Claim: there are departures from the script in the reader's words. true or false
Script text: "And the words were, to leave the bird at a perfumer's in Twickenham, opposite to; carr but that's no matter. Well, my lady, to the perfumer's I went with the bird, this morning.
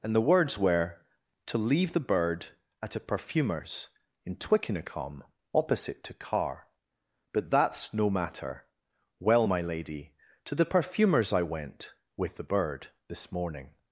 false